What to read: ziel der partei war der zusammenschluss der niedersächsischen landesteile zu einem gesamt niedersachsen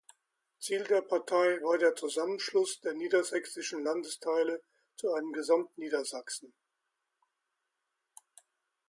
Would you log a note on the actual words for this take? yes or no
no